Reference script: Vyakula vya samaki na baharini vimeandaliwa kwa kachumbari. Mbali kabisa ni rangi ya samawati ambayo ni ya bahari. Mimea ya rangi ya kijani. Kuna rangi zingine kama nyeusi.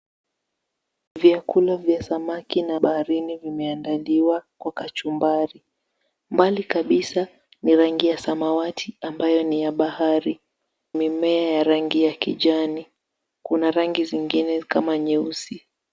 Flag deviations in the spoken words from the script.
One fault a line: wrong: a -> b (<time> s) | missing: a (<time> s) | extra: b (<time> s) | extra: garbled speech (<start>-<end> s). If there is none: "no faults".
no faults